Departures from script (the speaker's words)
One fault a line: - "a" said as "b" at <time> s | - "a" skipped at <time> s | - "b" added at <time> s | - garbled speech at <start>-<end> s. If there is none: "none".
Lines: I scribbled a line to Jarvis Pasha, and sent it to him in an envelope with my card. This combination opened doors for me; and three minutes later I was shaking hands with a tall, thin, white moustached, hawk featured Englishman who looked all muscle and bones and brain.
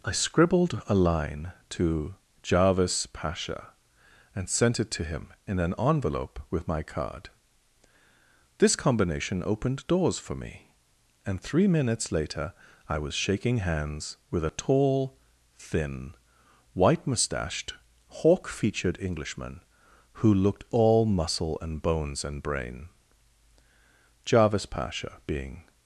- "Jarvis Pasha being" added at 24.2 s